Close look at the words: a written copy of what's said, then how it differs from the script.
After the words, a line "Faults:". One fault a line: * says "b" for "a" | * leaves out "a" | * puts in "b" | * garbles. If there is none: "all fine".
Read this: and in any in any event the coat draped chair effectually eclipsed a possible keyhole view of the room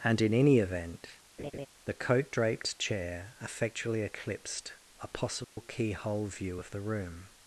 and in any event the coat draped chair effectually eclipsed a possible keyhole view of the room
Faults:
* leaves out "in any"